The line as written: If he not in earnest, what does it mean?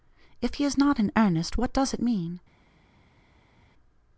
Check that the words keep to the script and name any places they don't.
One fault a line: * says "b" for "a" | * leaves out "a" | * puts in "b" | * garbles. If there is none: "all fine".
* puts in "is"